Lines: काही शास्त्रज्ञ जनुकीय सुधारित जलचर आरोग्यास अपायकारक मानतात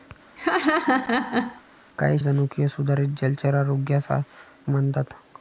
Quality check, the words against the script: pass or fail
fail